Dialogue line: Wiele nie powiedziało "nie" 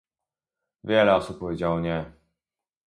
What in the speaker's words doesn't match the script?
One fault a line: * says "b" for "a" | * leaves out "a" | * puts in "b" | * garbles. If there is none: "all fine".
* says "osób" for "nie"